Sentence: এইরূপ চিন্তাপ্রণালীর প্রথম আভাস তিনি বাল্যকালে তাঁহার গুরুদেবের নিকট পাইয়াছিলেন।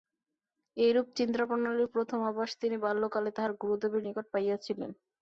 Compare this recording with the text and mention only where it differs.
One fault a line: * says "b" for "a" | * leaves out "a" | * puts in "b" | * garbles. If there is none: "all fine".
all fine